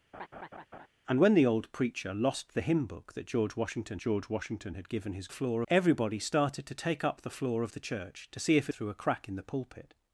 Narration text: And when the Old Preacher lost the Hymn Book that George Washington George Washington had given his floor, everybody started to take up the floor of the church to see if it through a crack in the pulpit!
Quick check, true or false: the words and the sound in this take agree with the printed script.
false